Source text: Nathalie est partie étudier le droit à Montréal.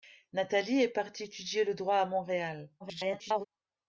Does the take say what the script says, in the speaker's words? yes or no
no